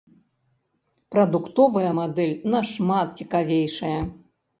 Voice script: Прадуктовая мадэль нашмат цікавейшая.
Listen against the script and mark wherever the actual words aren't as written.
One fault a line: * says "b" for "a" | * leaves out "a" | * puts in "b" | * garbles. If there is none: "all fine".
all fine